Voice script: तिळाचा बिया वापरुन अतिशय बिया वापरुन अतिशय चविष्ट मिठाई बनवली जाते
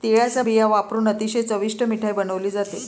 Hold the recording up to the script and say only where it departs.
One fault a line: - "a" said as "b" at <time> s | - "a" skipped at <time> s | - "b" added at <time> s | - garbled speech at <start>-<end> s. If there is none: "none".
- "बिया वापरुन अतिशय" skipped at 1.4 s